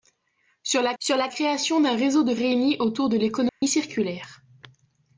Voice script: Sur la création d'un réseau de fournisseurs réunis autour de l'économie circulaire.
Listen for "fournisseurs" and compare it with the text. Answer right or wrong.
wrong